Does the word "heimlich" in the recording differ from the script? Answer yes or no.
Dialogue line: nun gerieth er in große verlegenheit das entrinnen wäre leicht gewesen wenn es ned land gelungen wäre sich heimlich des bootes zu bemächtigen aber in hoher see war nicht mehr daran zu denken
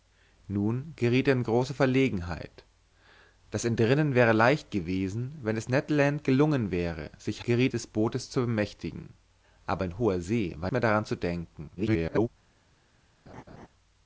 yes